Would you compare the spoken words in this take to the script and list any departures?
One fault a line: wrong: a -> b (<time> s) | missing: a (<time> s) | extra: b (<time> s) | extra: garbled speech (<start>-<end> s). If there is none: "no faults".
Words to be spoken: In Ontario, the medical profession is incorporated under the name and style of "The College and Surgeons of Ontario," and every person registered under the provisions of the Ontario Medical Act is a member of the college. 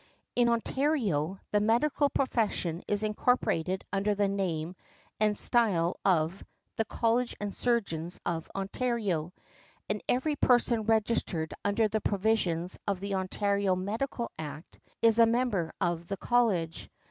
no faults